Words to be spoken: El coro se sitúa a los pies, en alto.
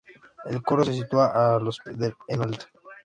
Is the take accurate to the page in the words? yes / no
no